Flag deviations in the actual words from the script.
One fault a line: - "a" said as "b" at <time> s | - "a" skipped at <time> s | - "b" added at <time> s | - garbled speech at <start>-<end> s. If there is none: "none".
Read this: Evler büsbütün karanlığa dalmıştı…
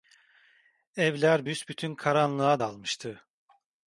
none